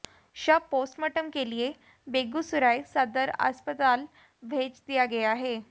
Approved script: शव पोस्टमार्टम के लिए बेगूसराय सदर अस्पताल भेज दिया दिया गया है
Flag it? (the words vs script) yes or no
yes